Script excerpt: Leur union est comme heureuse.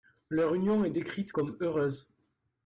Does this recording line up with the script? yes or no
no